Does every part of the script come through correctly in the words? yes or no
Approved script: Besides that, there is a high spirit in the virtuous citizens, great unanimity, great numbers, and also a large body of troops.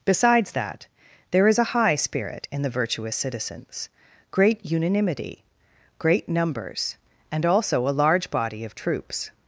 yes